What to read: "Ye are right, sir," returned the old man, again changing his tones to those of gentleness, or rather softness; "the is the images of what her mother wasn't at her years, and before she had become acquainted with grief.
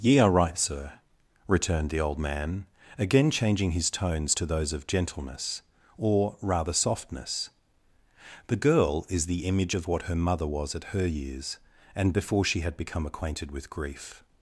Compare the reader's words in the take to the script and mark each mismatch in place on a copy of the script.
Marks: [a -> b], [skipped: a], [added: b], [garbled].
"Ye are right, sir," returned the old man, again changing his tones to those of gentleness, or rather softness; "the [added: girl] is the [images -> image] of what her mother [wasn't -> was] at her years, and before she had become acquainted with grief.